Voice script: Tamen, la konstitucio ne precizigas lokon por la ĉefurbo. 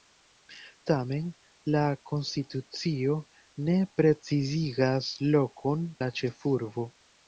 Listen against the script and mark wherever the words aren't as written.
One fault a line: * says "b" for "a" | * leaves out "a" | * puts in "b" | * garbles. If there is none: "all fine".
* leaves out "por"